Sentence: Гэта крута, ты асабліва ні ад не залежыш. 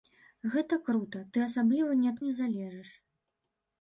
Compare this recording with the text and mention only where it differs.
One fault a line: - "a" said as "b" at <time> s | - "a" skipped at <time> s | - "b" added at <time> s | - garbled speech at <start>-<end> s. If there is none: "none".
none